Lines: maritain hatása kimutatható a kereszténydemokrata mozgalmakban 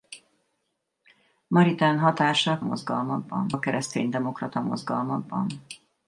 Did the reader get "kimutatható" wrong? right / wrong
wrong